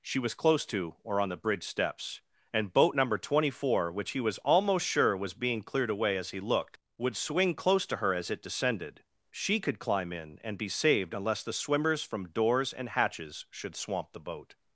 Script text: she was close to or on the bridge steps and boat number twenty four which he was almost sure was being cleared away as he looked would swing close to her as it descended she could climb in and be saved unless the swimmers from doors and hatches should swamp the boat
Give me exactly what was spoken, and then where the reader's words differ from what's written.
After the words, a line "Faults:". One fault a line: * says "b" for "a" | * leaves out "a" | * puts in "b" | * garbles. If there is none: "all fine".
she was close to or on the bridge steps and boat number twenty four which he was almost sure was being cleared away as he looked would swing close to her as it descended she could climb in and be saved unless the swimmers from doors and hatches should swamp the boat
Faults:
all fine